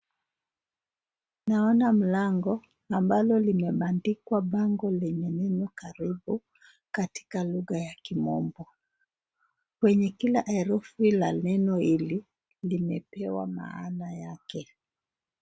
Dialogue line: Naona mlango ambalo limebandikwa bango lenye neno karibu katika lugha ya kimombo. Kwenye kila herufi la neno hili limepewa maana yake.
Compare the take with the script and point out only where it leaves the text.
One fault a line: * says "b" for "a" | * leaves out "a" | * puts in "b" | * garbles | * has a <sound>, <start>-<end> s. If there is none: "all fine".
all fine